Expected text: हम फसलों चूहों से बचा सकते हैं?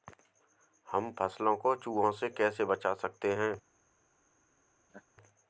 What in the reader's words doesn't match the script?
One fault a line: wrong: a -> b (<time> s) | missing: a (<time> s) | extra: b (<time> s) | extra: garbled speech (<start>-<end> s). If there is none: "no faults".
extra: को (1.6 s)
extra: कैसे (2.3 s)